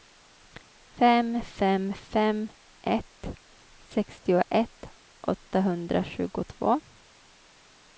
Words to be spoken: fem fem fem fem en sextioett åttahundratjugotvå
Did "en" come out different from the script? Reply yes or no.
yes